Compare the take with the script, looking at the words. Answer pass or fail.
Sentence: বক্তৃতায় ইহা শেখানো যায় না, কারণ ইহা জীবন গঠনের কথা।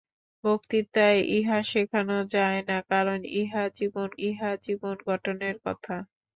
fail